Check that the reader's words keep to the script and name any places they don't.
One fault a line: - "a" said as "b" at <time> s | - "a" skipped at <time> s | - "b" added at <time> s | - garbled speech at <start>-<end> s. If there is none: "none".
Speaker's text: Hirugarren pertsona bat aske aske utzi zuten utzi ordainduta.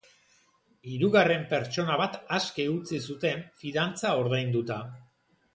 - "aske" skipped at 2.7 s
- "utzi" said as "fidantza" at 3.6 s